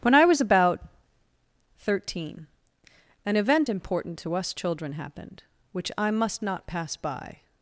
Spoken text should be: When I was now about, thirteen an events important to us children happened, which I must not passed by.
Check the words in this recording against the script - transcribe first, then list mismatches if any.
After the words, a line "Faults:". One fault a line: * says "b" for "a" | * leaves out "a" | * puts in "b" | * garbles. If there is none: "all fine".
When I was about, thirteen an event important to us children happened, which I must not pass by.
Faults:
* leaves out "now"
* says "event" for "events"
* says "pass" for "passed"